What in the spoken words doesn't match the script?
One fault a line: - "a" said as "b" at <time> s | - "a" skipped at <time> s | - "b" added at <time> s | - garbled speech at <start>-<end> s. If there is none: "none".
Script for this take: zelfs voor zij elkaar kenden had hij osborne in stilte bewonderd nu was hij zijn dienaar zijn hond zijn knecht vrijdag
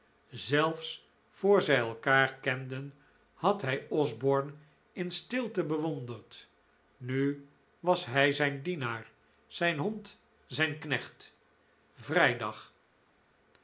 none